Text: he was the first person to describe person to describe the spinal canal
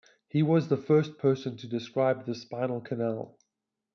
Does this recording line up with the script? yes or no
no